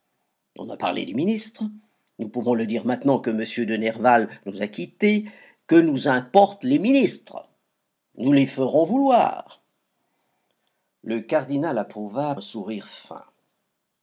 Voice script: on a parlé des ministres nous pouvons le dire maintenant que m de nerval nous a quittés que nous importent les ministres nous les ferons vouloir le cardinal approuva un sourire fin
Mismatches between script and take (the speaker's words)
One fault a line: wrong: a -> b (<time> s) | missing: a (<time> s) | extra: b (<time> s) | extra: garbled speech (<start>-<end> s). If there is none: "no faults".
no faults